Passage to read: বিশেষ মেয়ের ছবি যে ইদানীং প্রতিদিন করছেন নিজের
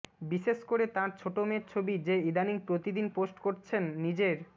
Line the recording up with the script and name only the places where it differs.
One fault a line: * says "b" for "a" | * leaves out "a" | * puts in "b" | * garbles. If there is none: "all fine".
* puts in "করে তাঁর ছোট"
* puts in "পোস্ট"